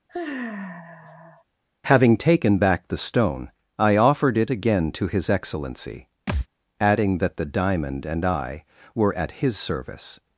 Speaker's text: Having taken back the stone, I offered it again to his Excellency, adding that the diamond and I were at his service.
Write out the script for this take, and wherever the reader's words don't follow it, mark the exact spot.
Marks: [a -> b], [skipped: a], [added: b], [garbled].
Having taken back the stone, I offered it again to his Excellency, adding that the diamond and I were at his service.